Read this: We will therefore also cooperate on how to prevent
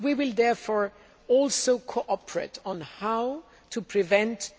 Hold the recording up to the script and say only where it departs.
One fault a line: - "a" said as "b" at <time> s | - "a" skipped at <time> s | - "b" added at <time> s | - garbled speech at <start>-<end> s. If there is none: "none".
none